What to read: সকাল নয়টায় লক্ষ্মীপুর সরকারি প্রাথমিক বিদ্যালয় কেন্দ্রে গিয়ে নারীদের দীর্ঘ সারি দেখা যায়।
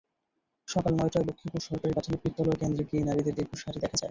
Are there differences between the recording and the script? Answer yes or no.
no